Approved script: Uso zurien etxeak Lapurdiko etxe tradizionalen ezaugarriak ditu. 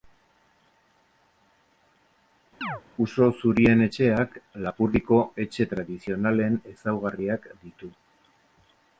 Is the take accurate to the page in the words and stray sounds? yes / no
no